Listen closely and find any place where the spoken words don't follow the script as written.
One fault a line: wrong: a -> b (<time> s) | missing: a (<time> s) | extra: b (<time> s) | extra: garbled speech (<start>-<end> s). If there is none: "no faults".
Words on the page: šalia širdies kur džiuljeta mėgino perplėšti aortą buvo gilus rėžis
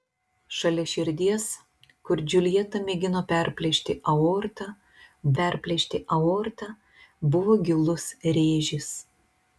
extra: perplėšti aortą (5.4 s)